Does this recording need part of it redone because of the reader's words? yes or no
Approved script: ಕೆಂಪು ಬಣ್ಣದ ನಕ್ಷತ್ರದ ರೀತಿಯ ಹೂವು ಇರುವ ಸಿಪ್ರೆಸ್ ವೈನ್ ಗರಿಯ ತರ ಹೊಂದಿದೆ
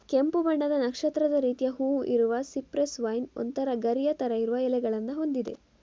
yes